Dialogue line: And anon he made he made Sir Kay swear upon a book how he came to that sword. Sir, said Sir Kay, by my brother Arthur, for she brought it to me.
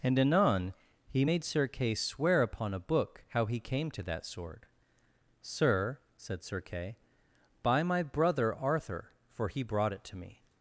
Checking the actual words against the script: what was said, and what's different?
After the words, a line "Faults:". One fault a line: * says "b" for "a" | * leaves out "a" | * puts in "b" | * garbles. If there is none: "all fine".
And anon he made Sir Kay swear upon a book how he came to that sword. Sir, said Sir Kay, by my brother Arthur, for he brought it to me.
Faults:
* leaves out "he made"
* says "he" for "she"